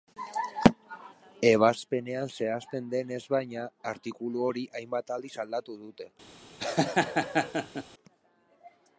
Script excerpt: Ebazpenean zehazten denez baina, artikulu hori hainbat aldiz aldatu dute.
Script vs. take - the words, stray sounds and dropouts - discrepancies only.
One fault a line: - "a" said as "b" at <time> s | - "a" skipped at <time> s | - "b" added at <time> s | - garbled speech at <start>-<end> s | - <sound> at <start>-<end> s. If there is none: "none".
- laugh at 6.6-7.8 s